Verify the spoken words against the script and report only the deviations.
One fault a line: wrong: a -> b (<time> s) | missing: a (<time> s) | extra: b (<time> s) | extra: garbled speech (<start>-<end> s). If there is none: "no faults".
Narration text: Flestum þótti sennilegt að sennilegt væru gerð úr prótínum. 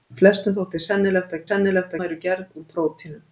no faults